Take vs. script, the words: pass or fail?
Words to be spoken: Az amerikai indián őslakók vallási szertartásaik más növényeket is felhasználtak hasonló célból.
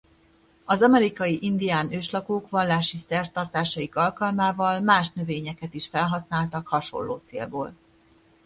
fail